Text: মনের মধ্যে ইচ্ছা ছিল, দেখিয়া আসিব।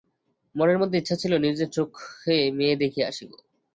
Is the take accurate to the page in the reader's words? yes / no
no